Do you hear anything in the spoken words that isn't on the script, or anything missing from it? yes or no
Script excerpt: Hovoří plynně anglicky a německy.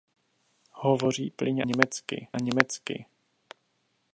yes